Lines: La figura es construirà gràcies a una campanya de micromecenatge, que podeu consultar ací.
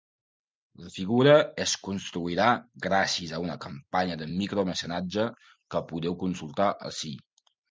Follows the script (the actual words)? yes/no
yes